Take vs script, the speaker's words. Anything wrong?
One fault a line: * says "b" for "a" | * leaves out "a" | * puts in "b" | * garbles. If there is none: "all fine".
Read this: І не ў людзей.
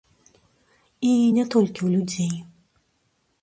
* puts in "толькі"